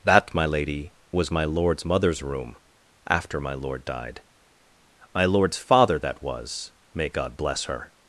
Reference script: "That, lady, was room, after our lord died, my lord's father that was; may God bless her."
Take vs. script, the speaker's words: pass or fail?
fail